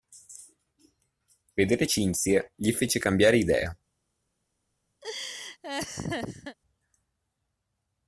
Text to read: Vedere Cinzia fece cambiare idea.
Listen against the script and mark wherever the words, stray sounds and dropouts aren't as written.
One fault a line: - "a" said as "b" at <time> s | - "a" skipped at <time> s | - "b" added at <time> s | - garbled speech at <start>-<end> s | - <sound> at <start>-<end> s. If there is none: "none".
- "gli" added at 2.6 s
- laugh at 5.0-6.6 s